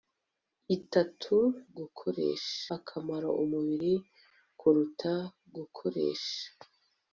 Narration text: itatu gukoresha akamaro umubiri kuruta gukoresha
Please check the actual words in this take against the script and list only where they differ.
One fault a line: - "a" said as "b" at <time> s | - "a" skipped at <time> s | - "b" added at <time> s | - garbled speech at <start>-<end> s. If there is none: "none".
none